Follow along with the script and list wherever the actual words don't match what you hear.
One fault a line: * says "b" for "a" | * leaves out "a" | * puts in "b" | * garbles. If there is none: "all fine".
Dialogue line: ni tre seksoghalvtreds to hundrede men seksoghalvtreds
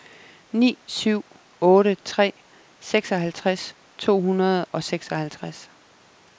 * puts in "syv otte"
* says "og" for "men"